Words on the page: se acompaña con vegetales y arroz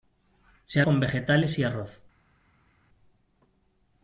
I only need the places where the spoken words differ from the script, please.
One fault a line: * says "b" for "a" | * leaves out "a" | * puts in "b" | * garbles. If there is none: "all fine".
* leaves out "acompaña"